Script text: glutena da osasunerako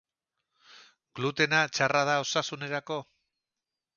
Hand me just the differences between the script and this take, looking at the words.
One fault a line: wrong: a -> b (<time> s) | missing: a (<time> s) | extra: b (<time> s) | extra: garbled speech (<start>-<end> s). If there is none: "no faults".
extra: txarra (1.7 s)